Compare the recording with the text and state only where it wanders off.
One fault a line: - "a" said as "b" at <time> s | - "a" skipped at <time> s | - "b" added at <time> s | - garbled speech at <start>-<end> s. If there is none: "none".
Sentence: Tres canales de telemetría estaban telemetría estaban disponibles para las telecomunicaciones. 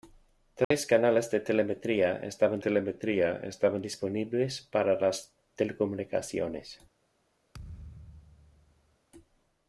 none